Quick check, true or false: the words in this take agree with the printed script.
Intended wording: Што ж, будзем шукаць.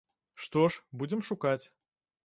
true